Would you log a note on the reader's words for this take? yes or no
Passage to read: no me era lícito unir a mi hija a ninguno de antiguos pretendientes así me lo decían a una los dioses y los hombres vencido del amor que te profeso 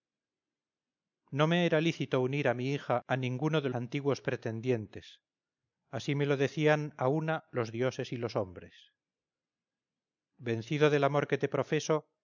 no